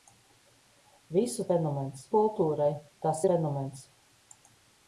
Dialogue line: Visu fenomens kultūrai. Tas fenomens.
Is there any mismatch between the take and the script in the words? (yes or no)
no